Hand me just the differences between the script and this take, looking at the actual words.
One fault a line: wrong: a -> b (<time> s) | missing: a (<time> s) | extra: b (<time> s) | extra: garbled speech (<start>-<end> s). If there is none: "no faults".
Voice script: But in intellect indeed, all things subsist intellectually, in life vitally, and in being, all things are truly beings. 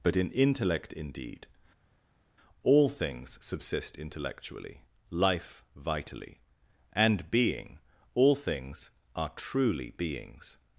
missing: in (4.8 s)
missing: in (7.3 s)